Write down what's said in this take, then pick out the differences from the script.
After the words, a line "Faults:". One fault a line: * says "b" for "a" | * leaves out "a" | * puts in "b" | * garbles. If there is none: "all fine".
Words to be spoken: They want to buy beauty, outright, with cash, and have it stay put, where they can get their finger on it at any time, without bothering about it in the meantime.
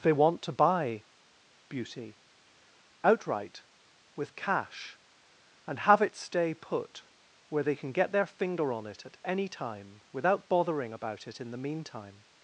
They want to buy beauty, outright, with cash, and have it stay put, where they can get their finger on it at any time, without bothering about it in the meantime.
Faults:
all fine